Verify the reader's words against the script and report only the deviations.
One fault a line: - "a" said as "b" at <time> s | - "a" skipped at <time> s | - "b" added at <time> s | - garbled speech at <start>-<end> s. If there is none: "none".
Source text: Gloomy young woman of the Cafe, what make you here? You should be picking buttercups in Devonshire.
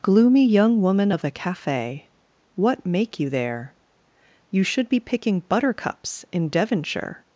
- "here" said as "there" at 3.3 s